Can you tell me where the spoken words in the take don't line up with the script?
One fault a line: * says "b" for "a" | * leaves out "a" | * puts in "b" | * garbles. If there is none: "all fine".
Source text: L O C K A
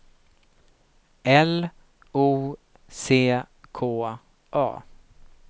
all fine